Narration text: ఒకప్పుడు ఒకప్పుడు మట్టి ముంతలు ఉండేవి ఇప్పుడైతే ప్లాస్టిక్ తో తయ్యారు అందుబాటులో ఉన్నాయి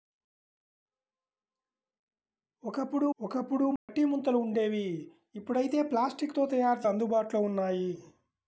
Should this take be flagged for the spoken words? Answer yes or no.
no